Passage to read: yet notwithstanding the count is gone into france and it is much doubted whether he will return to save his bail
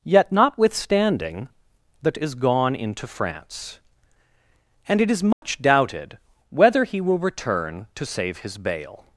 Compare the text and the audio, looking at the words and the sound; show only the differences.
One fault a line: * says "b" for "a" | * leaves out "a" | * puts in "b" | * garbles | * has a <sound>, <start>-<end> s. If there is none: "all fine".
* leaves out "count"
* has a dropout, 5.3-5.4 s